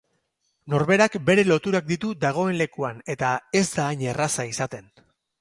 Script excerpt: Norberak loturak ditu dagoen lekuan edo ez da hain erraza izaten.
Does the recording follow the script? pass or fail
fail